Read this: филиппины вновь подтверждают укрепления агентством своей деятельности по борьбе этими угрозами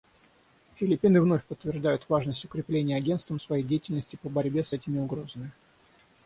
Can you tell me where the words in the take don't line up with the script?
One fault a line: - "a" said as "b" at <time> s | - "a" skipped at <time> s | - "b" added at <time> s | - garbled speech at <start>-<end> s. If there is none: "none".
- "важность" added at 2.1 s
- "с" added at 4.6 s